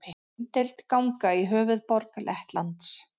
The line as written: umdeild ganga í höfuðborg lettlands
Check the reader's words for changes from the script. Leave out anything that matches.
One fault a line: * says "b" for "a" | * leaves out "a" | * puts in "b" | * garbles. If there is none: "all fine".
all fine